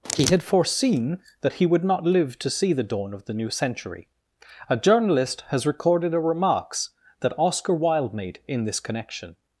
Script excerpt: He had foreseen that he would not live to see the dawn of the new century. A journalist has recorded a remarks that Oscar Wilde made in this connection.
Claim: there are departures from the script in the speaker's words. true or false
false